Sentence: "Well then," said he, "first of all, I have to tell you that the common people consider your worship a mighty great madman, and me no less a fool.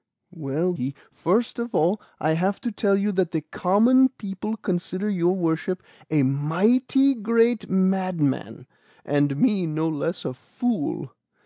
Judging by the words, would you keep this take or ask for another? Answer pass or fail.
fail